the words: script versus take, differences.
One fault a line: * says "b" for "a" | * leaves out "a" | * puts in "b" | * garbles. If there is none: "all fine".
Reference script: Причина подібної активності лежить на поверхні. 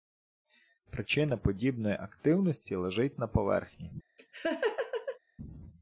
all fine